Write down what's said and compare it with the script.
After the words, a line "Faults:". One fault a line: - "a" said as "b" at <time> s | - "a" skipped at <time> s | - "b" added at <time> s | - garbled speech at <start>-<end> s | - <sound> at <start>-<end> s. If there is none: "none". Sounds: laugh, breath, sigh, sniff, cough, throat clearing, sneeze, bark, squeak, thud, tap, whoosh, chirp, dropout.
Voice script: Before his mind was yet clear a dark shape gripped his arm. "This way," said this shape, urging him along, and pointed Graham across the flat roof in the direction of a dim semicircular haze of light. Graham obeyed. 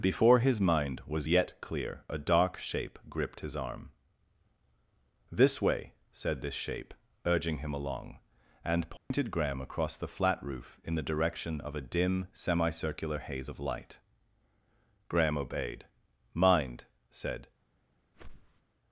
Before his mind was yet clear a dark shape gripped his arm. "This way," said this shape, urging him along, and pointed Graham across the flat roof in the direction of a dim semicircular haze of light. Graham obeyed. "Mind!" said
Faults:
- dropout at 9.0-9.1 s
- "Mind said" added at 16.3 s
- whoosh at 18.1-18.6 s